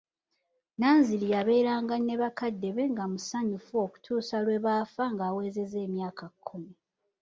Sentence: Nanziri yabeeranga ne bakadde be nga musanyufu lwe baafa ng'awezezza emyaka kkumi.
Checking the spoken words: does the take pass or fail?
fail